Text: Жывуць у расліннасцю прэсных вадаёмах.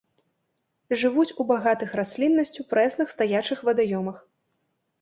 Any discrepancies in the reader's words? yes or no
yes